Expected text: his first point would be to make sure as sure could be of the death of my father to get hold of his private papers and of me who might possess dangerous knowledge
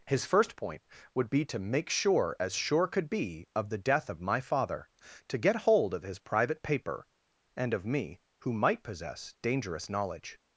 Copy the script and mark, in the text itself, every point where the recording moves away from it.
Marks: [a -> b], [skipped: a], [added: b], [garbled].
his first point would be to make sure as sure could be of the death of my father to get hold of his private [papers -> paper] and of me who might possess dangerous knowledge